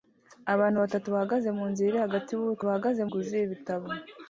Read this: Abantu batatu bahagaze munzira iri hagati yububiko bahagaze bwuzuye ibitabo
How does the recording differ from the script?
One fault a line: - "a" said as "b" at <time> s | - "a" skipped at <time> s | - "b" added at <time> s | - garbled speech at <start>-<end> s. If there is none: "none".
none